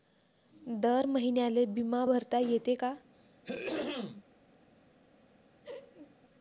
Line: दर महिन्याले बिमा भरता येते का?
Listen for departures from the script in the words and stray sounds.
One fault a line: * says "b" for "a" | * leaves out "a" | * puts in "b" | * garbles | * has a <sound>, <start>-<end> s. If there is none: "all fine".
* has a throat clearing, 3.1-4.2 s
* has a laugh, 5.6-6.2 s